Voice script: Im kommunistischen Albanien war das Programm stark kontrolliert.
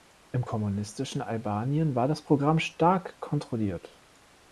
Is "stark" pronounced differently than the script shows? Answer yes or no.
no